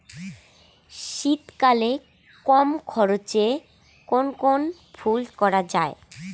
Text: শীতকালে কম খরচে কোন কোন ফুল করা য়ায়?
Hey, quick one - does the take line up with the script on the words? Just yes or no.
yes